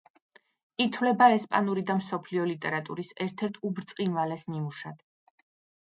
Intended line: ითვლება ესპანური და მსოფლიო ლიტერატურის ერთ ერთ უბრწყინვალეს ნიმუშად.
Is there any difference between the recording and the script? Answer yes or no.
no